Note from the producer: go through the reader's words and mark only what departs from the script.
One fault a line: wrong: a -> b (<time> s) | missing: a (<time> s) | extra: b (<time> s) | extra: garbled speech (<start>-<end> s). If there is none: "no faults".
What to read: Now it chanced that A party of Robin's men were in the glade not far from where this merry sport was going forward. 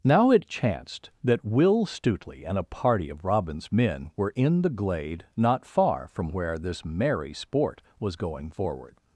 extra: Will Stutely and (1.4 s)